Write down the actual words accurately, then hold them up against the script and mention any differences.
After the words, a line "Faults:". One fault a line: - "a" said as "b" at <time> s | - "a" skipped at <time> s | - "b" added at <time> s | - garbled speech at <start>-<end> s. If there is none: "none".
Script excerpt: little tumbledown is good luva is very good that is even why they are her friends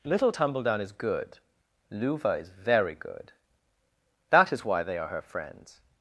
little tumbledown is good luva is very good that is why they are her friends
Faults:
- "even" skipped at 4.6 s